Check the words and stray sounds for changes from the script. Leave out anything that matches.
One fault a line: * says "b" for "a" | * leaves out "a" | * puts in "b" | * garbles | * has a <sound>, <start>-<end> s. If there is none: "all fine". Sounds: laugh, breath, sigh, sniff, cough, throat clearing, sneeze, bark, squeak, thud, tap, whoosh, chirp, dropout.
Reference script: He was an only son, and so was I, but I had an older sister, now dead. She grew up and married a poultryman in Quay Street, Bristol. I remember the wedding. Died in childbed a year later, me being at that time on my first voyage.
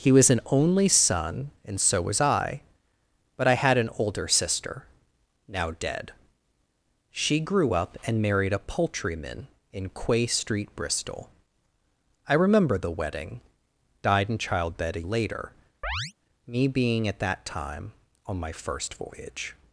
* leaves out "year"
* has a chirp, 15.8-16.1 s